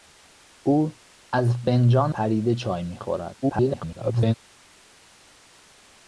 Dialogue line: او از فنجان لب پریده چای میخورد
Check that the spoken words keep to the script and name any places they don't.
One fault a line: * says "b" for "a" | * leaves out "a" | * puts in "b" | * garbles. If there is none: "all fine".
* leaves out "لب"
* garbles